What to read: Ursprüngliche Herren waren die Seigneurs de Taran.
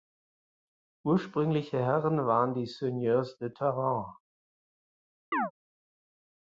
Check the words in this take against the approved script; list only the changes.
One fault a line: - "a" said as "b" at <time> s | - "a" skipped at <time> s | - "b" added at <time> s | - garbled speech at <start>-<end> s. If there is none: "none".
none